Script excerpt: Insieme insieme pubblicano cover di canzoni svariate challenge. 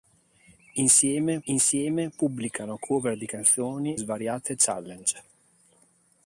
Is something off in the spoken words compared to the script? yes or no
no